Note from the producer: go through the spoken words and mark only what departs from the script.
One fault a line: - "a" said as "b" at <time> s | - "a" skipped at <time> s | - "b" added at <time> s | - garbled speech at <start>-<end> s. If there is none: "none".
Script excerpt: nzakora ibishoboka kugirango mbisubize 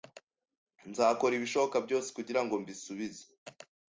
- "byose" added at 1.9 s